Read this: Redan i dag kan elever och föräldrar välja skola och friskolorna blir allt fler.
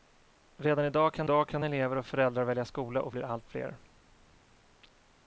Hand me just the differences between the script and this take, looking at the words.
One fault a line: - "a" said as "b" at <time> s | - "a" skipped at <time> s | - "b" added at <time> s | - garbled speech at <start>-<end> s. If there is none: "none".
- "dag kan" added at 1.2 s
- "friskolorna" skipped at 3.1 s